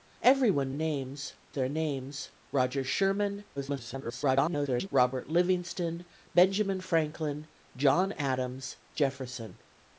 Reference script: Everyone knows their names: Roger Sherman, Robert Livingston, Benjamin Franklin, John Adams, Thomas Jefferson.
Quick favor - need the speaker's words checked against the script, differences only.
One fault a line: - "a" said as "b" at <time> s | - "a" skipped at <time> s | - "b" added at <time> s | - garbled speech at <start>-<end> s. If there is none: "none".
- "knows" said as "names" at 0.7 s
- garbled speech at 3.6-4.9 s
- "Thomas" skipped at 8.8 s